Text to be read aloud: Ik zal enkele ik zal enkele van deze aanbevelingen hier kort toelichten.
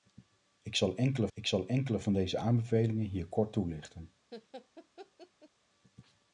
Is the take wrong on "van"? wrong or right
right